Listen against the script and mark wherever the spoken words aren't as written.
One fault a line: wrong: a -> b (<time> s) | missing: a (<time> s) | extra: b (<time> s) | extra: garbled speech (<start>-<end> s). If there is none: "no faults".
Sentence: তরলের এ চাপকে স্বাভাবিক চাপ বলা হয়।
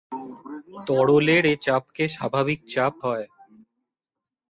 missing: বলা (2.9 s)